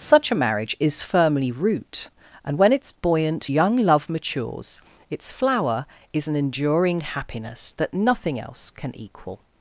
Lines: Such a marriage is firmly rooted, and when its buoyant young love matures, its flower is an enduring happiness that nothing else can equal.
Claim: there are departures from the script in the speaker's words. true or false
true